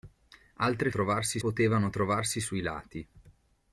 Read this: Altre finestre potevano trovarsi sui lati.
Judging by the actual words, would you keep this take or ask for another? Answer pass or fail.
fail